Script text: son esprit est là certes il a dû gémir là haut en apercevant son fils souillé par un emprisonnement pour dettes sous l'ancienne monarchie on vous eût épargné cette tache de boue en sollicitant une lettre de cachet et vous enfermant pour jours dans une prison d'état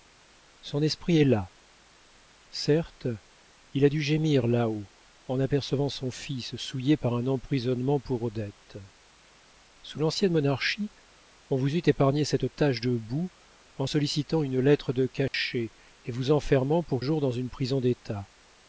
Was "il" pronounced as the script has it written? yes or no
yes